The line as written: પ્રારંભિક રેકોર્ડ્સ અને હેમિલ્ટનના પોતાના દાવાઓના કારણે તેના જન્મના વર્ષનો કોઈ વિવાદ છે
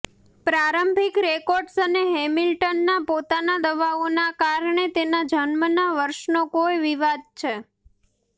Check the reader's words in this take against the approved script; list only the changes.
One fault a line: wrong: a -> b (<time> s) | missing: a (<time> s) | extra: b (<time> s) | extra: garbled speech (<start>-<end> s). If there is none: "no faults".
no faults